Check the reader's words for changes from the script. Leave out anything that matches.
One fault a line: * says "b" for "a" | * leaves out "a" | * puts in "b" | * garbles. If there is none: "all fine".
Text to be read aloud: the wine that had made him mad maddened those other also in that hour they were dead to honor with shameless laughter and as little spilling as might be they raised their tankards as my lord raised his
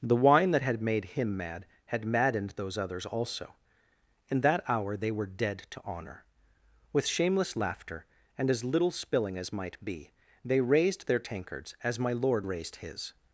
* puts in "had"
* says "others" for "other"